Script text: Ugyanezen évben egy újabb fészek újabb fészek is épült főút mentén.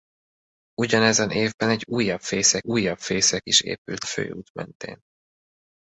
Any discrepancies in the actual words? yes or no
no